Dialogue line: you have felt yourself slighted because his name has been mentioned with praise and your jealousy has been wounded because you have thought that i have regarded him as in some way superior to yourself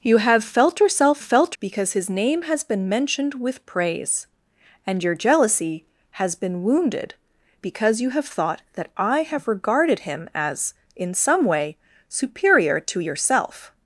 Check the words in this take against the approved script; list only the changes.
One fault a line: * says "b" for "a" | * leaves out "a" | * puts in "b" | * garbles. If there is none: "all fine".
* says "felt" for "slighted"